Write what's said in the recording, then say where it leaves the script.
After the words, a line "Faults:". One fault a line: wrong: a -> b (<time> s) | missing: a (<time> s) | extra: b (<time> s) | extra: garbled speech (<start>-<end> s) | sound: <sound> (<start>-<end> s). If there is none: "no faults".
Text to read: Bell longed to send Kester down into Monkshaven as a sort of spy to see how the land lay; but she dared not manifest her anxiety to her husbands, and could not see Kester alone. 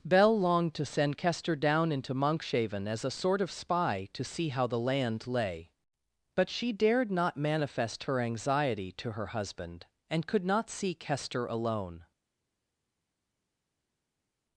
Bell longed to send Kester down into Monkshaven as a sort of spy to see how the land lay; but she dared not manifest her anxiety to her husband, and could not see Kester alone.
Faults:
wrong: husbands -> husband (9.4 s)